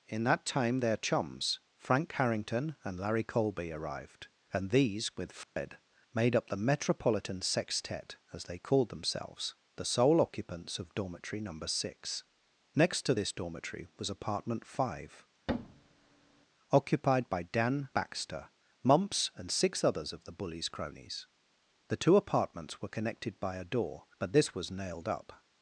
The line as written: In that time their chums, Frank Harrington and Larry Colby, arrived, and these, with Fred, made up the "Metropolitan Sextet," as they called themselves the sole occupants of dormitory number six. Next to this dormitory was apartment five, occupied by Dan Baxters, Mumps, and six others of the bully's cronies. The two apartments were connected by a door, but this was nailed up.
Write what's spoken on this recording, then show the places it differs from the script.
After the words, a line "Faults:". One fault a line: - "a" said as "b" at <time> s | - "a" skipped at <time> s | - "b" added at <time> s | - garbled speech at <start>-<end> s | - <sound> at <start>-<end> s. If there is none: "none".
In that time their chums, Frank Harrington and Larry Colby, arrived, and these, with Fred, made up the "Metropolitan Sextet," as they called themselves the sole occupants of dormitory number six. Next to this dormitory was apartment five, occupied by Dan Baxter, Mumps, and six others of the bully's cronies. The two apartments were connected by a door, but this was nailed up.
Faults:
- dropout at 5.4-5.6 s
- thud at 15.5-16.5 s
- "Baxters" said as "Baxter" at 17.9 s